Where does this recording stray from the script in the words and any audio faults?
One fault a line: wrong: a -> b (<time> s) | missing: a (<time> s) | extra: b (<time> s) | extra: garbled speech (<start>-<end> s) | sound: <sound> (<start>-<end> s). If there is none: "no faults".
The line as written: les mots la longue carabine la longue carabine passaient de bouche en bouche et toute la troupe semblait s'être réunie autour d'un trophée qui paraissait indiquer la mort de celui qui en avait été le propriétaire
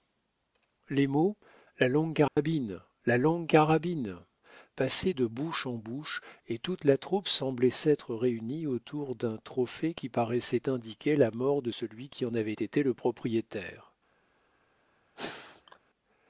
sound: dropout (2.3-2.4 s)
sound: sneeze (15.2-15.8 s)